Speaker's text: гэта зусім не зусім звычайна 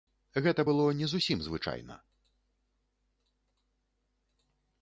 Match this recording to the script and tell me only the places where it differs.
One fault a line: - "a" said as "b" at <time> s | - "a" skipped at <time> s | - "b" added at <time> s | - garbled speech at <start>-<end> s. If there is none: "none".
- "зусім" said as "было" at 0.7 s